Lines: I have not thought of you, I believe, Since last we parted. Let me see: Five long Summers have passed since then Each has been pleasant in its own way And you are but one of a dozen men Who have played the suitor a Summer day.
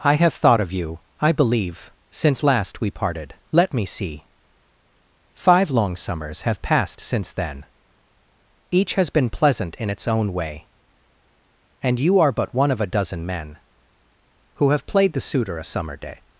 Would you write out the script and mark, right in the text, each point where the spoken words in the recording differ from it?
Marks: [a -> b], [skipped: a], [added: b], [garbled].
I have [skipped: not] thought of you, I believe, Since last we parted. Let me see: Five long Summers have passed since then Each has been pleasant in its own way And you are but one of a dozen men Who have played the suitor a Summer day.